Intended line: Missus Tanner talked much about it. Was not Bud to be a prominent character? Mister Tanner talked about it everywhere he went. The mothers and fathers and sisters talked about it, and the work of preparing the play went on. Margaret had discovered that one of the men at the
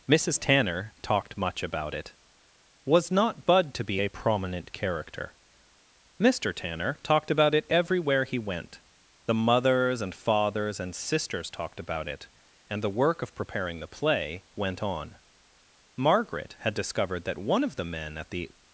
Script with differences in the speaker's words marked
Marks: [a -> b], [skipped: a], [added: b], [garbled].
Missus Tanner talked much about it. Was not Bud to be a prominent character? Mister Tanner talked about it everywhere he went. The mothers and fathers and sisters talked about it, and the work of preparing the play went on. Margaret had discovered that one of the men at the